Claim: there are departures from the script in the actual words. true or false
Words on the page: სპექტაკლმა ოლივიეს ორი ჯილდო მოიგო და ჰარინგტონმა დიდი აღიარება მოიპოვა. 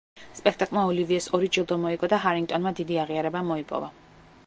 false